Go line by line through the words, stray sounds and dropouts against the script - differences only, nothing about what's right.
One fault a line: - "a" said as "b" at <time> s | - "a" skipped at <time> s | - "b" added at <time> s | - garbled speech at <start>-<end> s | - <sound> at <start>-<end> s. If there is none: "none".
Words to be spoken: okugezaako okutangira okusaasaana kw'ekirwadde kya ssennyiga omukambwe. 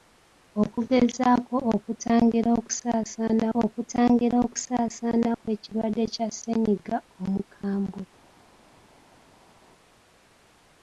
- "okutangira okusaasaana" added at 3.6 s